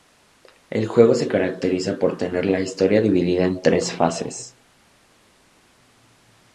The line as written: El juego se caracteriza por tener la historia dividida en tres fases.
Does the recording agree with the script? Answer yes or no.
yes